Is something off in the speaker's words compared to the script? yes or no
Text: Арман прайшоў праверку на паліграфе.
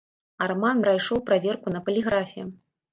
no